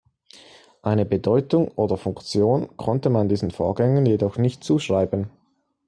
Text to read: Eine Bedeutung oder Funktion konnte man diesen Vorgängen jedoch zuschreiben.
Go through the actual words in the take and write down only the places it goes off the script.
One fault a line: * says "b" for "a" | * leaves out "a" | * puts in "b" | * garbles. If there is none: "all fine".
* puts in "nicht"